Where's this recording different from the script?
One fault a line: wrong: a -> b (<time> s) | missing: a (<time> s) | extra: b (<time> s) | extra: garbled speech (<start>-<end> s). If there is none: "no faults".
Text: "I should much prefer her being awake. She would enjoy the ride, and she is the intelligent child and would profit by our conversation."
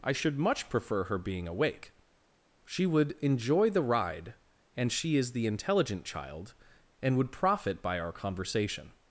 no faults